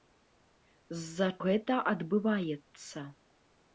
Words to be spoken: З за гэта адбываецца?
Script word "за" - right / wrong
right